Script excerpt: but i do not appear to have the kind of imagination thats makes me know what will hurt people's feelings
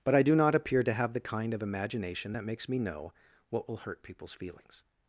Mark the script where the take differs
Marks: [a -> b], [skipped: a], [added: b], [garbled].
but i do not appear to have the kind of imagination [thats -> that] makes me know what will hurt people's feelings